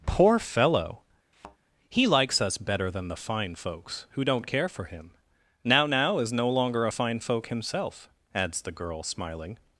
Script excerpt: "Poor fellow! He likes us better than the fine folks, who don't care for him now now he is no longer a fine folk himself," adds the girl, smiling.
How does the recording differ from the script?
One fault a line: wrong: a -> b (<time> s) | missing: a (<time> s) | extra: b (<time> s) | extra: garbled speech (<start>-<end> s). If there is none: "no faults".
missing: he (6.2 s)